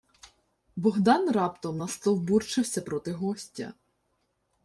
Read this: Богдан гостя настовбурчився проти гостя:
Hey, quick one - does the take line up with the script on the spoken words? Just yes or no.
no